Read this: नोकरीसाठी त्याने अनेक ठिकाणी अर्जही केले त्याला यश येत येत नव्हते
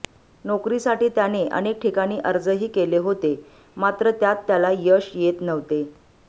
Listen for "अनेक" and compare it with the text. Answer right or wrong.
right